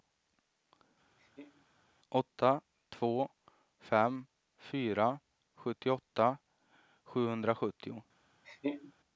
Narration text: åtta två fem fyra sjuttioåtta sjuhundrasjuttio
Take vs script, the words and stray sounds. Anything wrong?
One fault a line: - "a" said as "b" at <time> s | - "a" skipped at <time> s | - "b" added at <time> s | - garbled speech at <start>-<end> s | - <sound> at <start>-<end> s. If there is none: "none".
- laugh at 1.2-1.7 s
- laugh at 8.4-8.9 s